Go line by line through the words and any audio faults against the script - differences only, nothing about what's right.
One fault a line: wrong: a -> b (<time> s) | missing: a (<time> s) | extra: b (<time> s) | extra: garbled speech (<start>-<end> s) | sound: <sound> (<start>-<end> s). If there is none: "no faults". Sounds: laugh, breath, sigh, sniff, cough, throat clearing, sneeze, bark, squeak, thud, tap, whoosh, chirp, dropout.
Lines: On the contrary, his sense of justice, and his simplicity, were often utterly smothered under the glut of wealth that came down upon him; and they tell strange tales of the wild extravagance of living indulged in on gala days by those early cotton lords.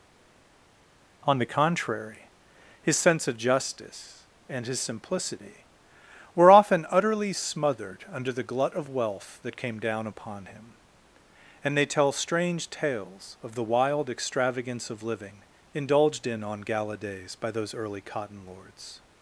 no faults